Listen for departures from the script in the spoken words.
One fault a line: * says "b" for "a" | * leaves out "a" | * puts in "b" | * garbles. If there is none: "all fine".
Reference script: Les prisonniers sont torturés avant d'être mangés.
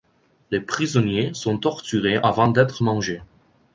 all fine